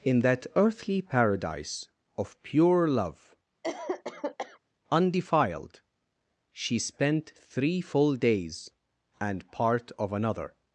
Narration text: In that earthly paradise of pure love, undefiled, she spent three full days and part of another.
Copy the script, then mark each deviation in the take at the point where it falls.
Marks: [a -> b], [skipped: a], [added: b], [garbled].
In that earthly paradise of pure love, undefiled, she spent three full days and part of another.